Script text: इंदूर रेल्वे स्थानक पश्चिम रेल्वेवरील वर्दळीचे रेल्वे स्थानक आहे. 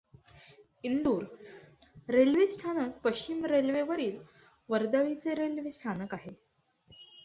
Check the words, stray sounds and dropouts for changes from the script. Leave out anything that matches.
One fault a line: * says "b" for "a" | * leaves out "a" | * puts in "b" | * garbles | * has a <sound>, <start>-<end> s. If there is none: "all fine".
all fine